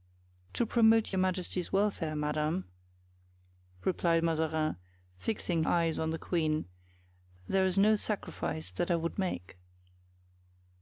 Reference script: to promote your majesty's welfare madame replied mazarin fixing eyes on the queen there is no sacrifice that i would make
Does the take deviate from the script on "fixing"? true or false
false